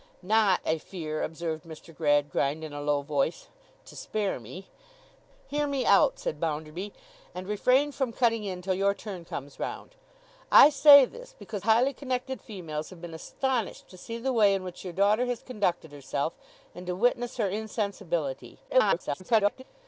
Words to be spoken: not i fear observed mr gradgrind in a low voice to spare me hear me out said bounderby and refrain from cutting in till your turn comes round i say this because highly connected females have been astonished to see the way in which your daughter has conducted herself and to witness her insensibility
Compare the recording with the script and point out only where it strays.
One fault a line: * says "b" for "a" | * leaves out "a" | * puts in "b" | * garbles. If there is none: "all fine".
* garbles